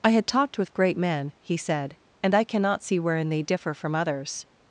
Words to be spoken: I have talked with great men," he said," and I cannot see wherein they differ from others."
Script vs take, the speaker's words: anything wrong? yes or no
yes